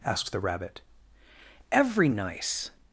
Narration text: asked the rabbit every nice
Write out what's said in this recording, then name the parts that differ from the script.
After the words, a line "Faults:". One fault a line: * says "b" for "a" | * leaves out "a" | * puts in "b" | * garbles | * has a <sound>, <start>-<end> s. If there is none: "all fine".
asked the rabbit every nice
Faults:
all fine